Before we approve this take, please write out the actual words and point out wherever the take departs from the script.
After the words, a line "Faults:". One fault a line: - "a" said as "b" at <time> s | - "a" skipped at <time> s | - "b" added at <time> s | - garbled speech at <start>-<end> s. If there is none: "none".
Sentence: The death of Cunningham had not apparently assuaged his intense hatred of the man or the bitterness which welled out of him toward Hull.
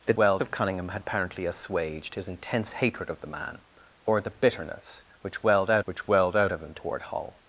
The welled of Cunningham had apparently assuaged his intense hatred of the man or the bitterness which welled out which welled out of him toward Hull.
Faults:
- "death" said as "welled" at 0.1 s
- "not" skipped at 1.0 s
- "which welled out" added at 5.8 s